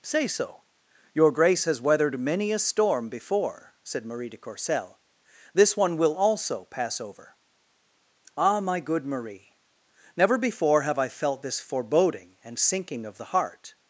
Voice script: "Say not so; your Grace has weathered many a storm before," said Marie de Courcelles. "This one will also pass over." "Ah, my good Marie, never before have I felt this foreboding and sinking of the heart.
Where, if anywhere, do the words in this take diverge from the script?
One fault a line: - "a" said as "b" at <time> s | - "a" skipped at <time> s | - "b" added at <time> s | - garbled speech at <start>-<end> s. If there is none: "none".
- "not" skipped at 0.3 s